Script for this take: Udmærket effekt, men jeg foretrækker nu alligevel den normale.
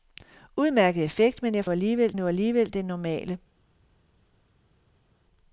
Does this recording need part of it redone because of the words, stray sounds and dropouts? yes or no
yes